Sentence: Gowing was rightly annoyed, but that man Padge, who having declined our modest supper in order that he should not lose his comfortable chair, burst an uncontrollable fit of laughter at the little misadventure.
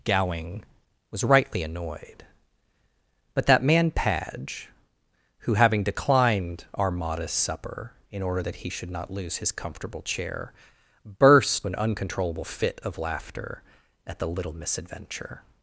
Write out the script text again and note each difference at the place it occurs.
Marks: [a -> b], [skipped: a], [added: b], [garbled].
Gowing was rightly annoyed, but that man Padge, who having declined our modest supper in order that he should not lose his comfortable chair, burst an uncontrollable fit of laughter at the little misadventure.